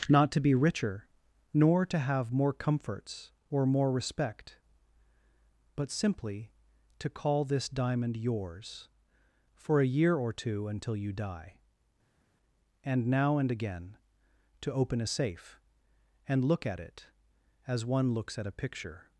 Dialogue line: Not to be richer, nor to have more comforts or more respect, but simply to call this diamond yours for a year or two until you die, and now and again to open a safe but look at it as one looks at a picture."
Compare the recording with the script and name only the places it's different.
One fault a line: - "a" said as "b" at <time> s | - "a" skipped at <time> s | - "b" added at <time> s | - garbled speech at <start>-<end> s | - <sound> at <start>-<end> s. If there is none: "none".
- "but" said as "and" at 16.3 s